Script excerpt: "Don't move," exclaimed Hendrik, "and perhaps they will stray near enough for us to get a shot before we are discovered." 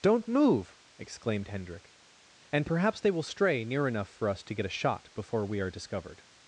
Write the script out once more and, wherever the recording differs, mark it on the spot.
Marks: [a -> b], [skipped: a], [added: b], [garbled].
"Don't move," exclaimed Hendrik, "and perhaps they will stray near enough for us to get a shot before we are discovered."